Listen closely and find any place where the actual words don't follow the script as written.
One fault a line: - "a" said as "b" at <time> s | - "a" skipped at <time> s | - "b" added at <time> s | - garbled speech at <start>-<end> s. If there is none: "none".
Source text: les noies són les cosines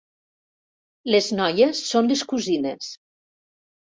none